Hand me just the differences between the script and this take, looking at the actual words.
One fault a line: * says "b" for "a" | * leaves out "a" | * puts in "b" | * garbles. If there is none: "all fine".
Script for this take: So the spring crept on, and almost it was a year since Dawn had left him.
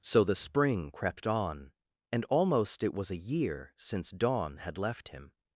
all fine